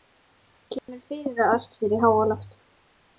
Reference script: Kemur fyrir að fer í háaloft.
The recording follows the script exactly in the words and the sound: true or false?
false